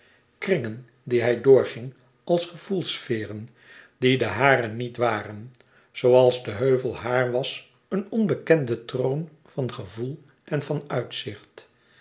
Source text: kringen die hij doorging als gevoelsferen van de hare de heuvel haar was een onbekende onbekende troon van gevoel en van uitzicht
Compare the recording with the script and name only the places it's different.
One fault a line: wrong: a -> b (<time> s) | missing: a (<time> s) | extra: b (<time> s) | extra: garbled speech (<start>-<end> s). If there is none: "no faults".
wrong: van -> die (4.0 s)
extra: niet waren zooals (4.7 s)
missing: onbekende (8.8 s)